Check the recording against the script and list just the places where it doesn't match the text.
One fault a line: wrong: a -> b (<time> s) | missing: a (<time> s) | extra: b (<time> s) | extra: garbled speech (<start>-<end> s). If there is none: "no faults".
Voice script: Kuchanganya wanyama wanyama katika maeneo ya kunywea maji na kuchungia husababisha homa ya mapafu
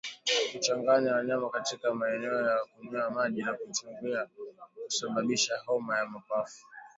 missing: wanyama (1.5 s)